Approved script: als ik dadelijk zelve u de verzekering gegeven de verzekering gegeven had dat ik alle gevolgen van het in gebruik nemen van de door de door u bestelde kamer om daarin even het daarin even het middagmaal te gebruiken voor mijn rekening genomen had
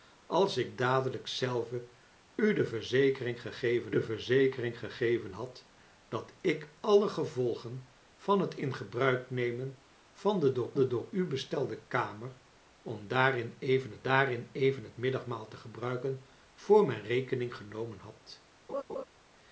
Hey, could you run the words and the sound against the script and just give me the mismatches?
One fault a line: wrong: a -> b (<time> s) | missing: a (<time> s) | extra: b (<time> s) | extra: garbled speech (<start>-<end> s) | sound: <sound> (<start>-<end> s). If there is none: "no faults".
sound: laugh (18.7-19.0 s)